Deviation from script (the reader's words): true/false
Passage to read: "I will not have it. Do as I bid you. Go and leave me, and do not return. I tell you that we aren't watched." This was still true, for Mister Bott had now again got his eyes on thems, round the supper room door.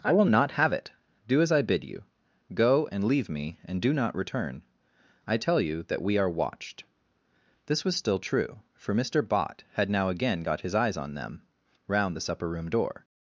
true